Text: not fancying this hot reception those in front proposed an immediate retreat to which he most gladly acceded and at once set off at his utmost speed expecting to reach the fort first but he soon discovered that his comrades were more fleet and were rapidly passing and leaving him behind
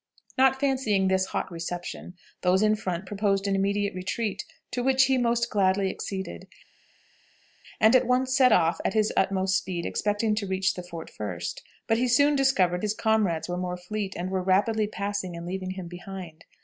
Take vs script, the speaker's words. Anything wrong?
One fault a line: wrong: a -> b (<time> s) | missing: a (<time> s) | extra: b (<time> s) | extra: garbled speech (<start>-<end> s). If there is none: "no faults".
missing: that (12.8 s)